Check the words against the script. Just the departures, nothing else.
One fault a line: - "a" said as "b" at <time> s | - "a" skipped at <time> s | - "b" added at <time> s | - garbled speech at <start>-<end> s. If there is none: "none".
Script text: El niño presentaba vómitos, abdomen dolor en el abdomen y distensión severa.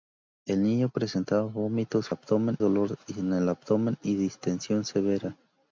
none